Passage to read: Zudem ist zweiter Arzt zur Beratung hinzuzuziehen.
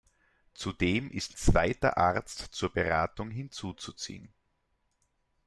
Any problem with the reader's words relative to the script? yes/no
no